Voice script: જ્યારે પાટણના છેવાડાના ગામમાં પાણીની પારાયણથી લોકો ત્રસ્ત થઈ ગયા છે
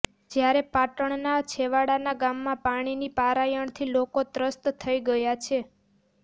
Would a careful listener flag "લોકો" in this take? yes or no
no